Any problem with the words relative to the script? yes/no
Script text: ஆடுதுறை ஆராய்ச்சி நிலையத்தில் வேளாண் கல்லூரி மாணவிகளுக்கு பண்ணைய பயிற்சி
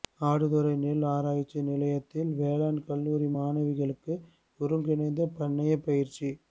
yes